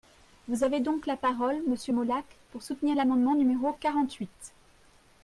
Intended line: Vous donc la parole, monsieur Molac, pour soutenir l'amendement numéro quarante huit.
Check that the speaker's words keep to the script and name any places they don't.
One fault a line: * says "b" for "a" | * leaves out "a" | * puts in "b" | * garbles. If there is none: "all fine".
* puts in "avez"